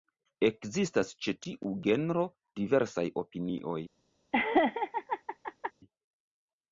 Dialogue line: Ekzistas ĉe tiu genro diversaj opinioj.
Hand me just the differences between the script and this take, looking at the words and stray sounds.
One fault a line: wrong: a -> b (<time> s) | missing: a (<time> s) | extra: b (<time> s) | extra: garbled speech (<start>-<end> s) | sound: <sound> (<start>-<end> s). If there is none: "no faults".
sound: laugh (4.3-5.7 s)